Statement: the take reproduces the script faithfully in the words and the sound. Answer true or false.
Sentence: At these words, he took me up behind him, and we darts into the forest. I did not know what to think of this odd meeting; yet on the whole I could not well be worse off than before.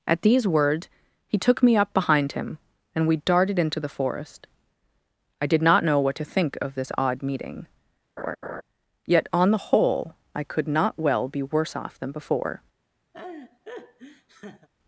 false